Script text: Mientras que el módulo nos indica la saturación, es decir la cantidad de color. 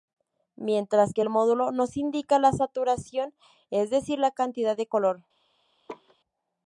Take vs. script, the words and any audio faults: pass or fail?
fail